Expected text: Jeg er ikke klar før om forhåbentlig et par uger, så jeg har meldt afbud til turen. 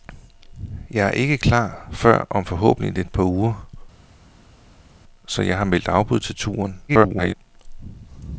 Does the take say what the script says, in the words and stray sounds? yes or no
no